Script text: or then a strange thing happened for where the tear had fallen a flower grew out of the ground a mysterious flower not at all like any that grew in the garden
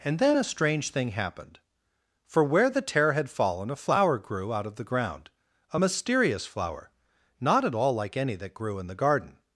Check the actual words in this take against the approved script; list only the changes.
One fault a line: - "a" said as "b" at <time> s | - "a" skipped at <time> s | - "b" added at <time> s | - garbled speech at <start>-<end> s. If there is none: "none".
- "or" said as "and" at 0.0 s